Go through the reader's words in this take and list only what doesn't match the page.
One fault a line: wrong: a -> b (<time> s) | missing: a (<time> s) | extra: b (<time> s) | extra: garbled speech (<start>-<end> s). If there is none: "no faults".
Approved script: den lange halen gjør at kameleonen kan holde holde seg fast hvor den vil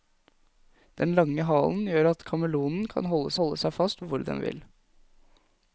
no faults